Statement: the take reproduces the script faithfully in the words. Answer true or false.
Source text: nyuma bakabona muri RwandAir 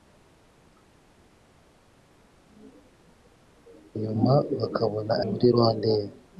true